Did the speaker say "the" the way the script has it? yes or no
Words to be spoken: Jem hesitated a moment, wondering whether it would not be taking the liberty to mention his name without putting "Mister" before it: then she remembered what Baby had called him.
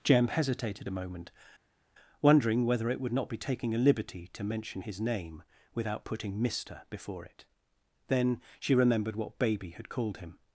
no